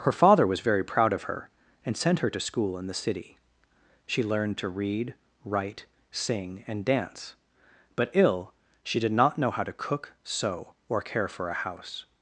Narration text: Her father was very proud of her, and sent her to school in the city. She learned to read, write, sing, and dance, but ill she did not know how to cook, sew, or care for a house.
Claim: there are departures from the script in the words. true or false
false